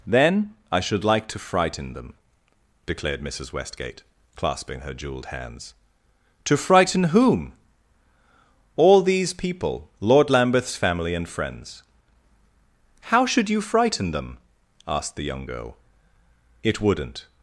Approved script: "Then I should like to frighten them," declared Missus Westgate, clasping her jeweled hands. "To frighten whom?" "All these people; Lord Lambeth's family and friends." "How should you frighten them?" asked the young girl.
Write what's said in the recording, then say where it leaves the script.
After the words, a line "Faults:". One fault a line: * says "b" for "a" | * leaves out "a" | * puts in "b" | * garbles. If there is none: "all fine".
"Then I should like to frighten them," declared Missus Westgate, clasping her jeweled hands. "To frighten whom?" "All these people; Lord Lambeth's family and friends." "How should you frighten them?" asked the young girl. "It wouldn't
Faults:
* puts in "It wouldn't"